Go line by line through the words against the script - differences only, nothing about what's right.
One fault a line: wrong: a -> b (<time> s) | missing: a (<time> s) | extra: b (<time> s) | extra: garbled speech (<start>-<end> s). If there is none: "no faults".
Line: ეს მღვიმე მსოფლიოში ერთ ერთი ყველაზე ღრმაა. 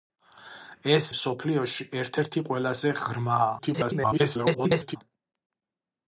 missing: მღვიმე (1.1 s)
extra: garbled speech (3.6-5.0 s)